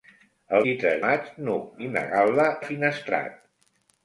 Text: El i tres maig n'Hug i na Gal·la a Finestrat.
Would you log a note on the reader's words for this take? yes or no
no